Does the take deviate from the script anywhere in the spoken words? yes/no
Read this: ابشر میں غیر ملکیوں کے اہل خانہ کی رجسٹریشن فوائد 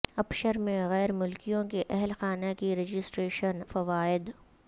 no